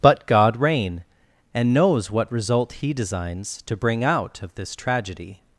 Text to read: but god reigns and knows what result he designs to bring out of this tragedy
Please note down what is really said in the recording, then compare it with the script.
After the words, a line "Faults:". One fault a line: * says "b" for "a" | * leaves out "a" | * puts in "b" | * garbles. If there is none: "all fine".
but god reign and knows what result he designs to bring out of this tragedy
Faults:
* says "reign" for "reigns"